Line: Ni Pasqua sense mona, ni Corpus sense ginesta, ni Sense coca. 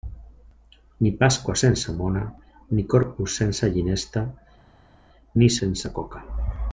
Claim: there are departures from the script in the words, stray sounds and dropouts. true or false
false